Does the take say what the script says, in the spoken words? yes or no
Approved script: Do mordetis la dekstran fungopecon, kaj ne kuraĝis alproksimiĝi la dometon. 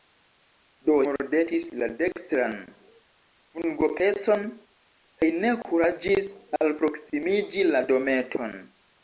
yes